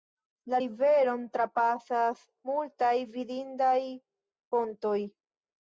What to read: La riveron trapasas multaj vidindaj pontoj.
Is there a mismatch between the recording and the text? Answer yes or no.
no